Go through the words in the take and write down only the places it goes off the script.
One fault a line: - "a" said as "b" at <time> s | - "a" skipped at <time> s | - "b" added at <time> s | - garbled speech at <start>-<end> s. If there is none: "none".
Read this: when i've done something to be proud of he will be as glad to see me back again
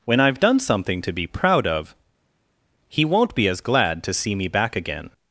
- "will" said as "won't" at 3.1 s